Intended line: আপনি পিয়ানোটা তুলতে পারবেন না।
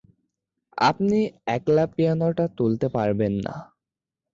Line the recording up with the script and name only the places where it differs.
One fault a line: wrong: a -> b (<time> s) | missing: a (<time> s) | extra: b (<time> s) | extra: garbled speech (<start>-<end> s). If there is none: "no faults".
extra: একলা (1.6 s)